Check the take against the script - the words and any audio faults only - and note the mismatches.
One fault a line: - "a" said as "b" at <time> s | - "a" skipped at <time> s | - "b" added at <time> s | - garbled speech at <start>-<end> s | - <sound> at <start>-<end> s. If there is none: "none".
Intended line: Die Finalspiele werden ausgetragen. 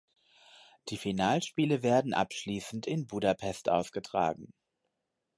- "abschließend in Budapest" added at 2.1 s